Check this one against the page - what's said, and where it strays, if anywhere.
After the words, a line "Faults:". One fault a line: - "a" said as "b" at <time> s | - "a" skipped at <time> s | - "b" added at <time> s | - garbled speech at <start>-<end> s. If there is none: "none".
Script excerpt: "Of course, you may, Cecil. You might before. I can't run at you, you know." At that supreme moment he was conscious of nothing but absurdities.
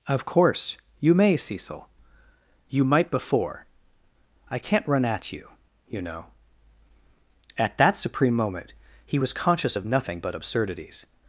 "Of course, you may, Cecil. You might before. I can't run at you, you know." At that supreme moment he was conscious of nothing but absurdities.
Faults:
none